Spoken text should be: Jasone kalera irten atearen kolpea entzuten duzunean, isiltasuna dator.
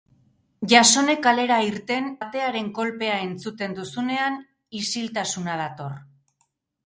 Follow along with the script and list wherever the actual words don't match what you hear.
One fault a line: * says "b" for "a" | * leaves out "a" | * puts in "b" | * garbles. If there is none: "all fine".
all fine